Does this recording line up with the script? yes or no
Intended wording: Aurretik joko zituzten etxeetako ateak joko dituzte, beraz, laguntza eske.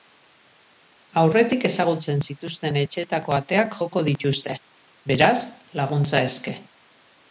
no